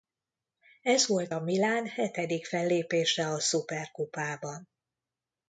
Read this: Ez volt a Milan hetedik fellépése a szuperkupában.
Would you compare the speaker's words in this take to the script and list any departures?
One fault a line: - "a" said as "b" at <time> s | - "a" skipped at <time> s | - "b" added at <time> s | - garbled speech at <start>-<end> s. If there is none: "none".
none